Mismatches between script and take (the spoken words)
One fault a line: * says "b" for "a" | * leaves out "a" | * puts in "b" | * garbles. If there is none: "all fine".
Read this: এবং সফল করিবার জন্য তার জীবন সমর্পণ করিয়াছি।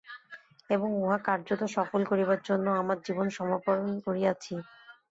* puts in "উহা কার্যত"
* says "আমার" for "তার"